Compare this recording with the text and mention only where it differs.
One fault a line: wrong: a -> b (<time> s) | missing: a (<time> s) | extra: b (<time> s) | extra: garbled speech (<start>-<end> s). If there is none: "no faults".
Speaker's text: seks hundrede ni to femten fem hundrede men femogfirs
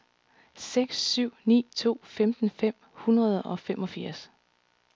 wrong: hundrede -> syv (1.0 s)
wrong: men -> og (3.4 s)